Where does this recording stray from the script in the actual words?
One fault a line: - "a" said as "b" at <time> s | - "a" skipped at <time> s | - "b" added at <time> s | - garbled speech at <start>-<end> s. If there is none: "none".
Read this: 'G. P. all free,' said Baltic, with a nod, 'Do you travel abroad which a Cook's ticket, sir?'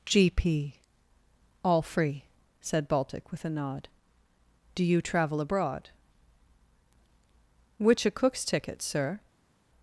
none